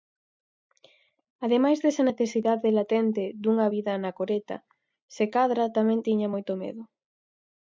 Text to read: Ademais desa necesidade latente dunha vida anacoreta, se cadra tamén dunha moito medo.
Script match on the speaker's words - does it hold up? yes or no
no